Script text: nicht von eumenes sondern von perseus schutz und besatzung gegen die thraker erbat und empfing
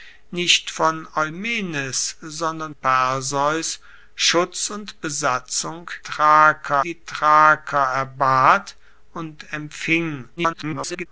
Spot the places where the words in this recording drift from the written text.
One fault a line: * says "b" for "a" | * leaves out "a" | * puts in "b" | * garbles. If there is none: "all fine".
* leaves out "von"
* says "thraker" for "gegen"
* garbles